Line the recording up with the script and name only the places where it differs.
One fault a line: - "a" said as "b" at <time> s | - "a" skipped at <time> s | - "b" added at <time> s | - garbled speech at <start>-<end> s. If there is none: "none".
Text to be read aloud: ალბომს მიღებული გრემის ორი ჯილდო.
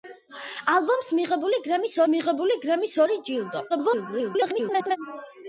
- "მიღებული გრემის" added at 2.1 s
- garbled speech at 3.7-5.0 s